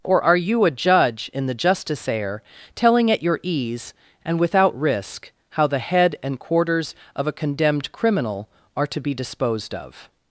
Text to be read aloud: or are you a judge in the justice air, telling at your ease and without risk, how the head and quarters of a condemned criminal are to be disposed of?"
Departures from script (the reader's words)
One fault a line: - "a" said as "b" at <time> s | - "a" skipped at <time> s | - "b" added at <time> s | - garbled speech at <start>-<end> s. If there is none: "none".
none